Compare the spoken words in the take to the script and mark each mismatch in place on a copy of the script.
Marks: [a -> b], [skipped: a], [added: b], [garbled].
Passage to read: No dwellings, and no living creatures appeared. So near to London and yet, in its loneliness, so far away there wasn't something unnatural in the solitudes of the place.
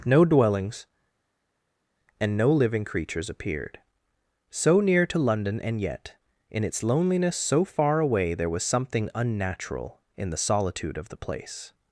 No dwellings, and no living creatures appeared. So near to London and yet, in its loneliness, so far away there [wasn't -> was] something unnatural in the [solitudes -> solitude] of the place.